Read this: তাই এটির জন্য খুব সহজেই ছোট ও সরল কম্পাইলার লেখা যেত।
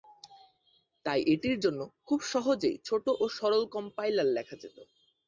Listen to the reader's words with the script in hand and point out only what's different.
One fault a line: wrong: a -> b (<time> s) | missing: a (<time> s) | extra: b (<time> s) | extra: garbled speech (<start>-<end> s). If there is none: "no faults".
no faults